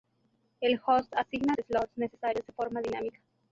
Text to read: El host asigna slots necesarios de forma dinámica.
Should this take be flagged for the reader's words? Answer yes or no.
no